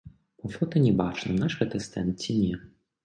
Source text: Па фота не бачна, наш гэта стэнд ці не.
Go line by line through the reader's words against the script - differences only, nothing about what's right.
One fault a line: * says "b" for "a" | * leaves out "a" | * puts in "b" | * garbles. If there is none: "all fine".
all fine